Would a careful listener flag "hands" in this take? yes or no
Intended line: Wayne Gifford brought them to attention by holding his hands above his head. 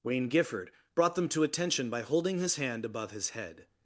yes